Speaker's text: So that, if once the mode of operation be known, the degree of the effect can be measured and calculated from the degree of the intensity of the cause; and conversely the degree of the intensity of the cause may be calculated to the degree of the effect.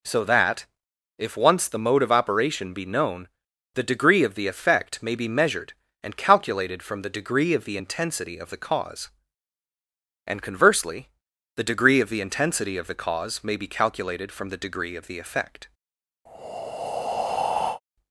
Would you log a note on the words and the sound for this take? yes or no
yes